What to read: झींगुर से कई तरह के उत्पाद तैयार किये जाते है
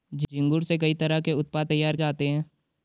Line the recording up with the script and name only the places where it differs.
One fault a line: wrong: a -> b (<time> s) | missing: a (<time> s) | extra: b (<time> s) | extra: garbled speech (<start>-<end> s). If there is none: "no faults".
missing: किये (2.0 s)